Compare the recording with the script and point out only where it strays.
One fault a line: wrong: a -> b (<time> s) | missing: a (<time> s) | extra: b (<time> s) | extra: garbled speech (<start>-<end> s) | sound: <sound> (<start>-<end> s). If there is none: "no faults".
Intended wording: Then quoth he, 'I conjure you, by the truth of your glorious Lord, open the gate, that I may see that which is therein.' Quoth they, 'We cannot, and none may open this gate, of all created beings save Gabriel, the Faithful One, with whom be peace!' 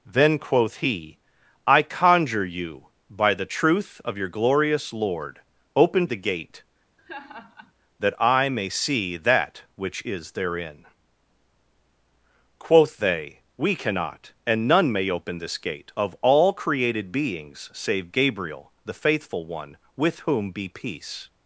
sound: laugh (7.0-7.7 s)